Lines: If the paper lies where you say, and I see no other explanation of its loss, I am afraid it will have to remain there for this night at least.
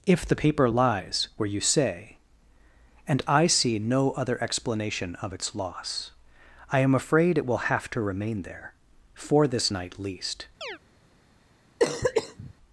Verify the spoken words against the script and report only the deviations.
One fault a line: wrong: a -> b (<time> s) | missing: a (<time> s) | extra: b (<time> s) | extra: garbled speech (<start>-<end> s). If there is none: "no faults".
missing: at (10.0 s)